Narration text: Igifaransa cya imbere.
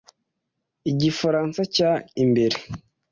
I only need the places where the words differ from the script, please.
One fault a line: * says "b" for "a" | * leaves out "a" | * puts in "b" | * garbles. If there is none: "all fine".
all fine